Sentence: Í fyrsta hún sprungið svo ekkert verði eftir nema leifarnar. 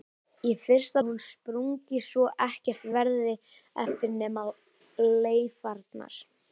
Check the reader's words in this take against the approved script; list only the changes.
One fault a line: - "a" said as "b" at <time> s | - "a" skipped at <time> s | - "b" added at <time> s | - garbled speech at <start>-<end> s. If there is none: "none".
none